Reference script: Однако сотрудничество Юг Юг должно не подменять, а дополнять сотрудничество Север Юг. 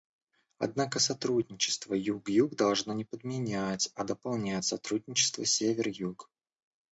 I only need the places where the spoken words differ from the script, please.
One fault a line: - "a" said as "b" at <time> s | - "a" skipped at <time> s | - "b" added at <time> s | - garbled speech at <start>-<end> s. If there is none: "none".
none